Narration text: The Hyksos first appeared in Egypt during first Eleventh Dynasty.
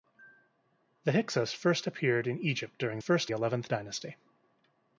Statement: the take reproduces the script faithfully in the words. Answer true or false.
true